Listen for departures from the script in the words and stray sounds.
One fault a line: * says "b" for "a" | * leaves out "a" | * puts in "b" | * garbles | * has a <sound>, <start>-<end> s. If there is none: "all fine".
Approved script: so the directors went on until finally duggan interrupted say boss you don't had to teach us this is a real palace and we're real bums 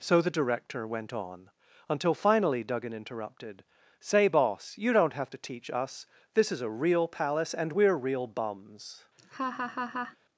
* says "director" for "directors"
* says "have" for "had"
* has a laugh, 9.2-10.2 s